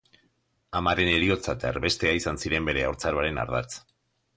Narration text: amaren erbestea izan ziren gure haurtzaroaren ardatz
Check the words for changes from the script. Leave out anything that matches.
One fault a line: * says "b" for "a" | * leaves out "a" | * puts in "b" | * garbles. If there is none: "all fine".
* puts in "heriotza eta"
* says "bere" for "gure"